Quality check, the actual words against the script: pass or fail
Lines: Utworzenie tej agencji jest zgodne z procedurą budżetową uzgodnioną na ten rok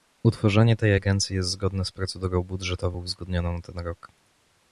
pass